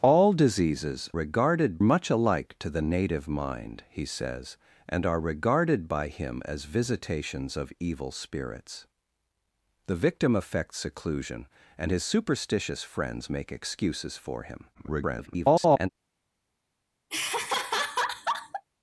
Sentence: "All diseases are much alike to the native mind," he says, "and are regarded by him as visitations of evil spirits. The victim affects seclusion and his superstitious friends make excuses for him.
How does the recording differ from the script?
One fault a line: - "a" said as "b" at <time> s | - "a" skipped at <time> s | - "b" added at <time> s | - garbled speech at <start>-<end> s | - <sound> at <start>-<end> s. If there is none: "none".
- "are" said as "regarded" at 1.1 s
- garbled speech at 14.7-15.9 s
- laugh at 17.1-18.6 s